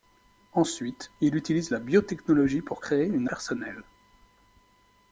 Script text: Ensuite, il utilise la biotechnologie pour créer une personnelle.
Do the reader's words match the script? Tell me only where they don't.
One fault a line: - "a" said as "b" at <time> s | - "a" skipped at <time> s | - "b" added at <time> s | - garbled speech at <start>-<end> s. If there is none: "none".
none